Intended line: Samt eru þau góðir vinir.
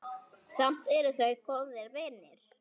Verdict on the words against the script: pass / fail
pass